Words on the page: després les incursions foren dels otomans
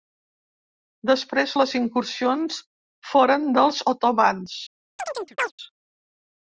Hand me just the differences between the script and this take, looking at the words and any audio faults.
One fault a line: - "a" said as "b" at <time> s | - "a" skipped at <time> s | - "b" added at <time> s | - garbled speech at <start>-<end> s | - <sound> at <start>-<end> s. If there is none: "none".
- chirp at 5.0-5.5 s